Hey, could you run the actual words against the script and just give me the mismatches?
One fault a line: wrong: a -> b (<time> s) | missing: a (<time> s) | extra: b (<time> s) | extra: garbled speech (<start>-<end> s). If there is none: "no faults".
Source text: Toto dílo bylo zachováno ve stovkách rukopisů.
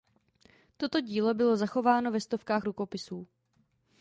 no faults